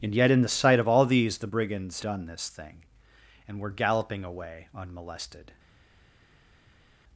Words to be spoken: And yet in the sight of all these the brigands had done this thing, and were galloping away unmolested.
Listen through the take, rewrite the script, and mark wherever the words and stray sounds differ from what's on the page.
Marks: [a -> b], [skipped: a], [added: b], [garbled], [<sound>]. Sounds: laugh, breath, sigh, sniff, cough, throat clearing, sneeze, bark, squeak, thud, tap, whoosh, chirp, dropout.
And yet in the sight of all these the brigands [skipped: had] done this thing, and were galloping away unmolested.